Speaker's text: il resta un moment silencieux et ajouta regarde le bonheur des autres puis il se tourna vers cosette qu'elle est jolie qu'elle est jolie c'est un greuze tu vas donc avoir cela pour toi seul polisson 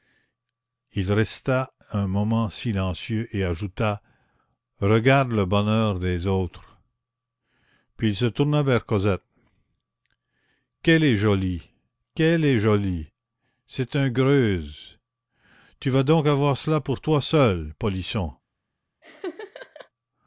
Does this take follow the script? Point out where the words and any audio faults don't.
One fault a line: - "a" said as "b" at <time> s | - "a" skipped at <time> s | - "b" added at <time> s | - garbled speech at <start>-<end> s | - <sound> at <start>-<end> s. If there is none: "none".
- laugh at 19.0-19.9 s